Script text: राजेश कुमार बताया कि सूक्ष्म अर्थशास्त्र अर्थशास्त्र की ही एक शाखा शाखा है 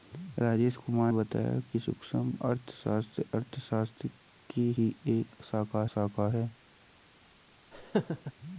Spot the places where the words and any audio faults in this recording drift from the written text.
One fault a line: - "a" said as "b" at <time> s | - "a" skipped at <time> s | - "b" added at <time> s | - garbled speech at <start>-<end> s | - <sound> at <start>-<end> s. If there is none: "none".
- laugh at 7.7-8.3 s